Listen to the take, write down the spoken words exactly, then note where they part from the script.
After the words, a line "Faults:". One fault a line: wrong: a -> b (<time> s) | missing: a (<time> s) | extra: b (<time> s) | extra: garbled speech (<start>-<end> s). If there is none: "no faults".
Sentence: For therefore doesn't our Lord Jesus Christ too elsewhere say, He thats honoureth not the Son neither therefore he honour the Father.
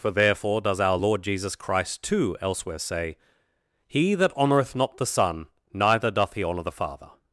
For therefore does our Lord Jesus Christ too elsewhere say, He that honoureth not the Son neither doth he honour the Father.
Faults:
wrong: doesn't -> does (0.6 s)
wrong: thats -> that (4.1 s)
wrong: therefore -> doth (6.1 s)